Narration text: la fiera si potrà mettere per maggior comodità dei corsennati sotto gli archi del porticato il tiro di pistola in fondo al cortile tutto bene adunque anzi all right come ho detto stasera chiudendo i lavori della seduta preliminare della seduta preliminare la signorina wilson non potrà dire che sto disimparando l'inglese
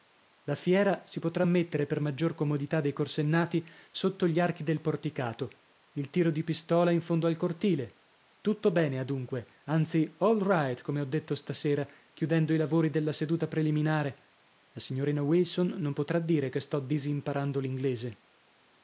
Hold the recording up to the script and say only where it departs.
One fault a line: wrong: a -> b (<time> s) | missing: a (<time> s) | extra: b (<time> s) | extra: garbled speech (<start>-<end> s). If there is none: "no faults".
missing: della seduta preliminare (14.4 s)